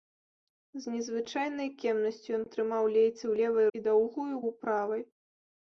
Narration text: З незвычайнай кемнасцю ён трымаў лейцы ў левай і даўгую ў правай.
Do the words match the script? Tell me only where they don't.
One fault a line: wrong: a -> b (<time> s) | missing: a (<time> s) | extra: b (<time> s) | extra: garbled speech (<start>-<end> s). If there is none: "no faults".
no faults